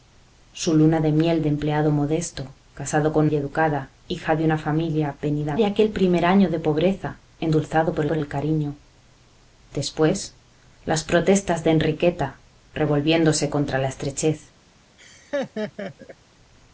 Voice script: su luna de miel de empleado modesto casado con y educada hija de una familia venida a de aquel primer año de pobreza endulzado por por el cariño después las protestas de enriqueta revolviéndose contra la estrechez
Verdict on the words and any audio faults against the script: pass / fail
fail